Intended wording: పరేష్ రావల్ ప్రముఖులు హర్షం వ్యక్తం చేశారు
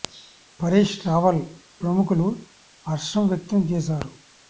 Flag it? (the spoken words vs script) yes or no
no